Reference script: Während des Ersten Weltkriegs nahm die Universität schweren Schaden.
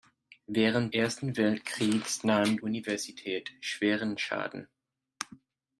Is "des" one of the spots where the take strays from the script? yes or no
yes